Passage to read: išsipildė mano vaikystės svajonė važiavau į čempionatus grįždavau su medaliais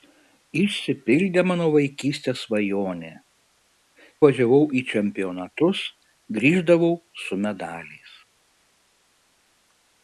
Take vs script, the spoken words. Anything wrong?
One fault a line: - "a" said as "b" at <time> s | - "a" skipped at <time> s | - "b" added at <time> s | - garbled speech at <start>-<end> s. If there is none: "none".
none